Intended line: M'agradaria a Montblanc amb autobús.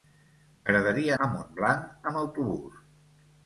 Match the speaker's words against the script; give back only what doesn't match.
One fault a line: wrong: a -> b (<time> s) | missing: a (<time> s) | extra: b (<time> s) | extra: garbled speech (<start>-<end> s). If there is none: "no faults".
no faults